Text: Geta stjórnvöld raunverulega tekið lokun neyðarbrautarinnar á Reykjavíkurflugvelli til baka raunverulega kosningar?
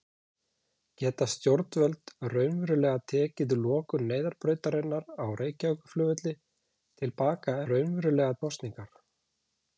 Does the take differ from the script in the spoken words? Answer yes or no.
no